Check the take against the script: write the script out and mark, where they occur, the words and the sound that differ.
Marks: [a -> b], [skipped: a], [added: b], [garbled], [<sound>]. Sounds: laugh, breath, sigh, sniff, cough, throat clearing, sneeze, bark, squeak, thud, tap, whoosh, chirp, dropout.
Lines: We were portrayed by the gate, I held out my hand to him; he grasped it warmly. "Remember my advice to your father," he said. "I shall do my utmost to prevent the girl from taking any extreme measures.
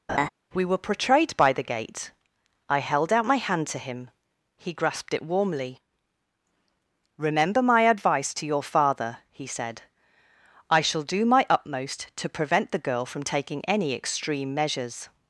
[laugh] We were portrayed by the gate, I held out my hand to him; he grasped it warmly. "Remember my advice to your father," he said. "I shall do my utmost to prevent the girl from taking any extreme measures.